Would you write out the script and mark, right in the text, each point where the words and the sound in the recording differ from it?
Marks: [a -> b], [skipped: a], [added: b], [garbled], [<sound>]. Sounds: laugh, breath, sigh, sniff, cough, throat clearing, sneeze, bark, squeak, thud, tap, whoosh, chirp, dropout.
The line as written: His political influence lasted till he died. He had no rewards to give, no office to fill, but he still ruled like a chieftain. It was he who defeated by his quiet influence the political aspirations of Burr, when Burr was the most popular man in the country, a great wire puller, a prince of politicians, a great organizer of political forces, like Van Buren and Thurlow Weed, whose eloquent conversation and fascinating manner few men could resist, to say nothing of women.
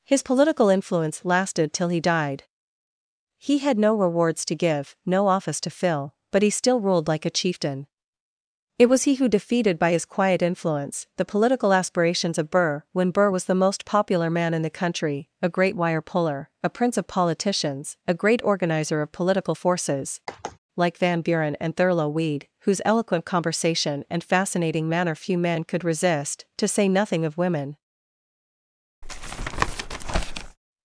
His political influence lasted till he died. He had no rewards to give, no office to fill, but he still ruled like a chieftain. It was he who defeated by his quiet influence the political aspirations of Burr, when Burr was the most popular man in the country, a great wire puller, a prince of politicians, a great organizer of political forces, [sigh] like Van Buren and Thurlow Weed, whose eloquent conversation and fascinating manner few men could resist, to say nothing of women. [tap]